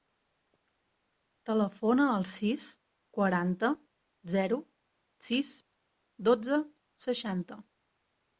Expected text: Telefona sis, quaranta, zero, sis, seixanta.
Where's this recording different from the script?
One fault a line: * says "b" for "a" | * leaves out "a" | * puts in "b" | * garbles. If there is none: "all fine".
* puts in "al"
* puts in "dotze"